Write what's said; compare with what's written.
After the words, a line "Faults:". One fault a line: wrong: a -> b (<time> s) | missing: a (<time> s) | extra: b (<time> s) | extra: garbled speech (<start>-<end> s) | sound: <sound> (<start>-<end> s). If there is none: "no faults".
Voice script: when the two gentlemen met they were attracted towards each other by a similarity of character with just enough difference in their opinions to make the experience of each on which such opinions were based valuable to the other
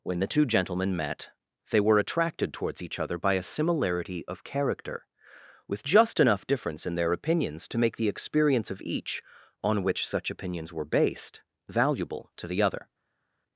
when the two gentlemen met they were attracted towards each other by a similarity of character with just enough difference in their opinions to make the experience of each on which such opinions were based valuable to the other
Faults:
no faults